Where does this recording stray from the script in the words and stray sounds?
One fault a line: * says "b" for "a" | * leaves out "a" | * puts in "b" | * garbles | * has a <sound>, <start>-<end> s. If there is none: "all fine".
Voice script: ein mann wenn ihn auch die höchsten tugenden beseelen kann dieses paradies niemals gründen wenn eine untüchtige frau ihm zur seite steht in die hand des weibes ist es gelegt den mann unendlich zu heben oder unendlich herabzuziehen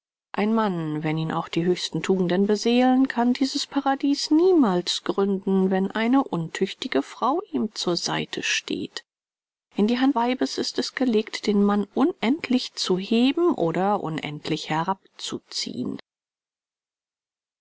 * leaves out "des"